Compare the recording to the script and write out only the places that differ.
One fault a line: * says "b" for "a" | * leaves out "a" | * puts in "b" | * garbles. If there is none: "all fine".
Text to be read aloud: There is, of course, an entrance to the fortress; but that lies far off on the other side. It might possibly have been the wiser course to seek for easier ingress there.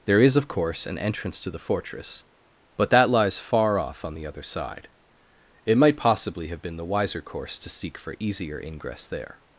all fine